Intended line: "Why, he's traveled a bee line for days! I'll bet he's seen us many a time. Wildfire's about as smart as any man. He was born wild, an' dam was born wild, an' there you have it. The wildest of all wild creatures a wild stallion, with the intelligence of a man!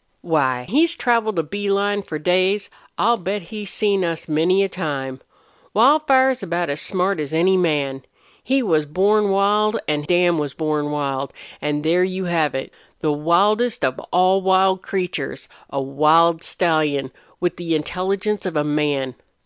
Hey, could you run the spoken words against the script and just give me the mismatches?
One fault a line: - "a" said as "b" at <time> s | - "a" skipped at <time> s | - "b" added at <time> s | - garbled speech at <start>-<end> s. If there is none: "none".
none